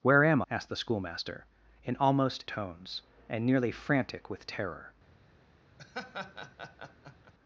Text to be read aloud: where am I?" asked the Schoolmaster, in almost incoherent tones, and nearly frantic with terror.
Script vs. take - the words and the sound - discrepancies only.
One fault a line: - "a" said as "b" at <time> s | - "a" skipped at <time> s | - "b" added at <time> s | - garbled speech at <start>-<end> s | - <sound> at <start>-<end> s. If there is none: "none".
- "I" skipped at 0.4 s
- "incoherent" skipped at 2.5 s
- laugh at 5.8-7.3 s